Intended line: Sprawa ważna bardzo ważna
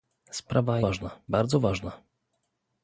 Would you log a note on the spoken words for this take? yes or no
no